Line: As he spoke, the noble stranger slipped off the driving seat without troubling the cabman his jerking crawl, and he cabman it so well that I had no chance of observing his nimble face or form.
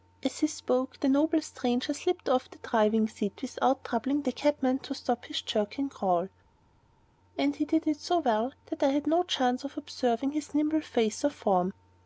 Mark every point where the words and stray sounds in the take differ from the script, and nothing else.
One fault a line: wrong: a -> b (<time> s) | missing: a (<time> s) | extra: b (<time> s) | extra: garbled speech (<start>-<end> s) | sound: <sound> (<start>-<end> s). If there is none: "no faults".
extra: to stop (4.8 s)
wrong: cabman -> did (7.6 s)